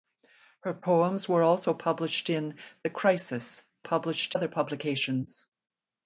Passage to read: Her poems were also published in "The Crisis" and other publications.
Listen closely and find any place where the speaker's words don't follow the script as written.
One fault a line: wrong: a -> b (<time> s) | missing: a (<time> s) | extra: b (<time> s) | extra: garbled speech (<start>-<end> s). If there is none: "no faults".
wrong: and -> published (3.8 s)